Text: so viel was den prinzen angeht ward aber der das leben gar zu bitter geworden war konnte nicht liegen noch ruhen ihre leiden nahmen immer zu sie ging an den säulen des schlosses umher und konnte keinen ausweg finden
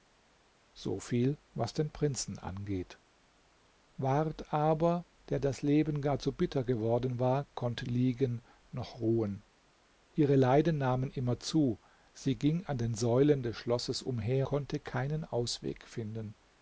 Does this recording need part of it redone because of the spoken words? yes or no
yes